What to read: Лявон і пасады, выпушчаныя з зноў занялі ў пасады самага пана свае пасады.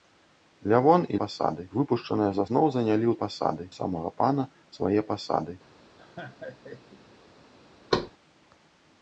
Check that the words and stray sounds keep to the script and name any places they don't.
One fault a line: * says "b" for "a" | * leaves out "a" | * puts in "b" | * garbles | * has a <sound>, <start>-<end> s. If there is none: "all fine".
* has a laugh, 6.0-7.1 s
* has a thud, 7.9-8.1 s